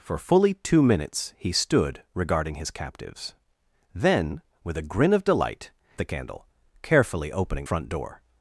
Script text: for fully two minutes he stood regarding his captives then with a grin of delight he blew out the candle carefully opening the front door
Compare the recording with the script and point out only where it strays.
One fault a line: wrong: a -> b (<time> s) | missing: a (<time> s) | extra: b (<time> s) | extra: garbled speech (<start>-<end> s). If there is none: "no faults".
missing: he blew out (5.7 s)
missing: the (7.7 s)